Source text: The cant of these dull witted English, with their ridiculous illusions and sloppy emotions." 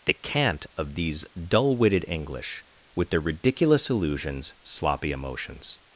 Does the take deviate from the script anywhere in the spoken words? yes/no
yes